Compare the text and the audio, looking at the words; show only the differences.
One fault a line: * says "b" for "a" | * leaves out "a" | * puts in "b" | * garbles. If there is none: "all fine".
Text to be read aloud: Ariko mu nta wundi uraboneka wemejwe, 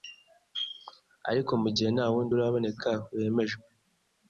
* puts in "gihe"